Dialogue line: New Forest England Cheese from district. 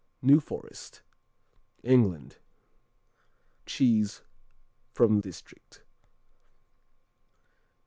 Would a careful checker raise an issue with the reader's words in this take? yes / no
no